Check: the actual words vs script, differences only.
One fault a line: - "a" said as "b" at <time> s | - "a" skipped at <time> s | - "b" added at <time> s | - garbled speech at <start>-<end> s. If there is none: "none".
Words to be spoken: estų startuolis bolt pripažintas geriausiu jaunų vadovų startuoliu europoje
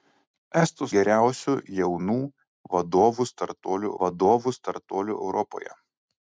- "startuolis bolt pripažintas geriausiu jaunų" said as "geriausiu jaunų vadovų startuoliu" at 1.0 s